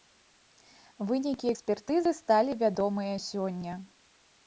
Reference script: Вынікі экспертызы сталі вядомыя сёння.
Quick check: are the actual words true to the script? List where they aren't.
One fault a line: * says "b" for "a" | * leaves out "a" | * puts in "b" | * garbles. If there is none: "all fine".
all fine